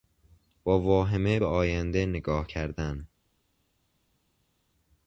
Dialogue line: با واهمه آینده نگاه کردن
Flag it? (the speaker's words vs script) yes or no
yes